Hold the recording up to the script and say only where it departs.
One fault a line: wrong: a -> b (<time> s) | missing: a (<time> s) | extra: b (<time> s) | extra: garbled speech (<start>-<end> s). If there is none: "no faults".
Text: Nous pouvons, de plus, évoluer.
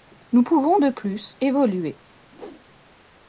no faults